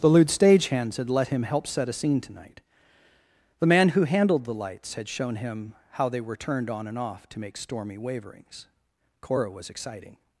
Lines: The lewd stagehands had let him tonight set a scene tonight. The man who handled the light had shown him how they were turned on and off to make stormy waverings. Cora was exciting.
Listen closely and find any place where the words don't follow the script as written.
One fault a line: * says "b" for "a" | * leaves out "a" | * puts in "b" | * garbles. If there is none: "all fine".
* says "help" for "tonight"
* says "lights" for "light"